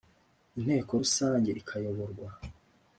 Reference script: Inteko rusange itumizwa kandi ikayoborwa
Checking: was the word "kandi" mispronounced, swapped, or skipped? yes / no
yes